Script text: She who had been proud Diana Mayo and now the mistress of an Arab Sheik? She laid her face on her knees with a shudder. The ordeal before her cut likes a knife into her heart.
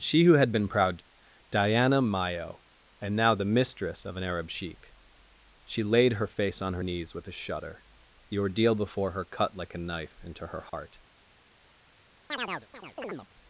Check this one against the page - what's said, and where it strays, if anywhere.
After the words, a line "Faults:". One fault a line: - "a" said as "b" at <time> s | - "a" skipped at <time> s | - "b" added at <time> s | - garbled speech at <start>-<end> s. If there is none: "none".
She who had been proud Diana Mayo and now the mistress of an Arab Sheik? She laid her face on her knees with a shudder. The ordeal before her cut like a knife into her heart.
Faults:
- "likes" said as "like" at 9.6 s